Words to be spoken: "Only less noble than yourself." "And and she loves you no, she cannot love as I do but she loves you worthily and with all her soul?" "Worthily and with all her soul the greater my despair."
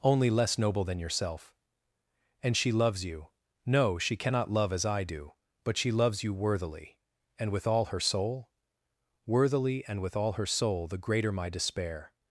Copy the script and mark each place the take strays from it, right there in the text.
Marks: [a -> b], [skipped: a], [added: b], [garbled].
"Only less noble than yourself." "And [skipped: and] she loves you no, she cannot love as I do but she loves you worthily and with all her soul?" "Worthily and with all her soul the greater my despair."